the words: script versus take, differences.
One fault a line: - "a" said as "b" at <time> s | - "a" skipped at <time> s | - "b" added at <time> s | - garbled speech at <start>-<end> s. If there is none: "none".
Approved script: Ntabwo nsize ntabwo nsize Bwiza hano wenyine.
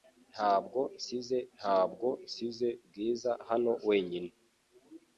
none